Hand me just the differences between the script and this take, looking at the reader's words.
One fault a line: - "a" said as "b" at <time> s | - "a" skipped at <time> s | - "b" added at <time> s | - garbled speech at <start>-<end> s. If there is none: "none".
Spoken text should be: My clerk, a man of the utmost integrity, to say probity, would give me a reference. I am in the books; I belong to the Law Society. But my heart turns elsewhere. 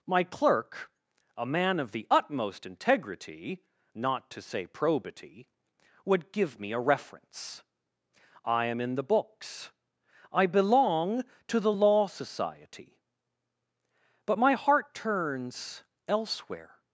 - "not" added at 3.9 s